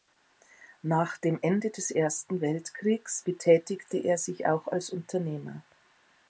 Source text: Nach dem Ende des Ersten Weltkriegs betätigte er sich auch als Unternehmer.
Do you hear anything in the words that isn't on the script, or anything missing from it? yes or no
no